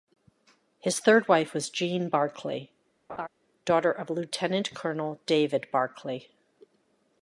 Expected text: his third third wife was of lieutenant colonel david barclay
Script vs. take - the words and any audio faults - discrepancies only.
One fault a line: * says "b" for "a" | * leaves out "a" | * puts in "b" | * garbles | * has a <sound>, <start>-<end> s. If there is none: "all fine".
* leaves out "third"
* puts in "jean barclay daughter"
* has a laugh, 3.1-3.3 s